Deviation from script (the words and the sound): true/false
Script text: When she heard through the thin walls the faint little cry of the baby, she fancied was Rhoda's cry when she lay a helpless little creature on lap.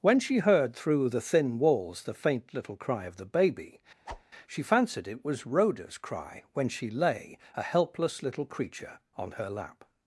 true